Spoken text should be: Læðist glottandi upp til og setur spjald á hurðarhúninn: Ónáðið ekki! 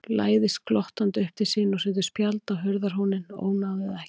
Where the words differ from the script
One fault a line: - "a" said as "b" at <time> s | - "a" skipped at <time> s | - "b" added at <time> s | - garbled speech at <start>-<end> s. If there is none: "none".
- "sín" added at 1.5 s